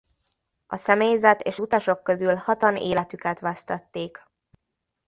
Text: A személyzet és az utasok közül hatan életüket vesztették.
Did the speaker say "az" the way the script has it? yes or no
no